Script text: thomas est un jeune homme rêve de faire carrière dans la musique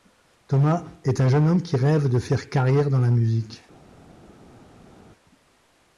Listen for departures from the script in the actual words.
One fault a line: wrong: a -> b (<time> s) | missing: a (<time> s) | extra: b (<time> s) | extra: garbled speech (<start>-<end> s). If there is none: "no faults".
extra: qui (1.6 s)